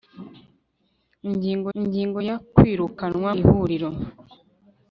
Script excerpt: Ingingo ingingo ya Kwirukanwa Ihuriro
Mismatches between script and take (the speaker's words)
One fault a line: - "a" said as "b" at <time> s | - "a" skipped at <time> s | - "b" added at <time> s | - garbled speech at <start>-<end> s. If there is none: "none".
none